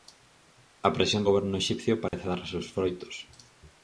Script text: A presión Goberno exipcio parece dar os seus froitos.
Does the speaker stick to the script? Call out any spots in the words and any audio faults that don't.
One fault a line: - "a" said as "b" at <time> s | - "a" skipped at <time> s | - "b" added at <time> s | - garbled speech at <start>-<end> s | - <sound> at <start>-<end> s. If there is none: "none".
- dropout at 2.1-2.1 s